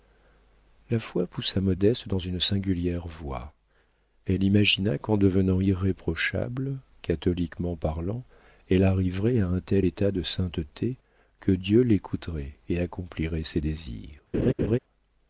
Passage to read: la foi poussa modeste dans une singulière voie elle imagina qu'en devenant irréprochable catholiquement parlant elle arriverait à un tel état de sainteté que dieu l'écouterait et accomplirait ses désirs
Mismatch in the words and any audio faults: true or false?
true